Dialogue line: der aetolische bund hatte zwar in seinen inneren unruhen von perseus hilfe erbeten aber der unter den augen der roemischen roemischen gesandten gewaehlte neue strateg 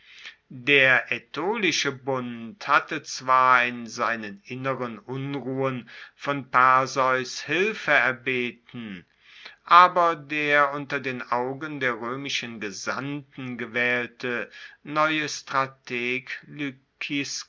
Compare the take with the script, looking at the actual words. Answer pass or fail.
fail